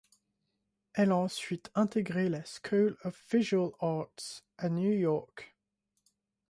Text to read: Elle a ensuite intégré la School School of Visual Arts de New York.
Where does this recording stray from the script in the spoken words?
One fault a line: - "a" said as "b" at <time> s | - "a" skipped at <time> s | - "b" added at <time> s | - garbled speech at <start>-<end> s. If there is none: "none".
- "School" skipped at 3.0 s
- "de" said as "à" at 4.6 s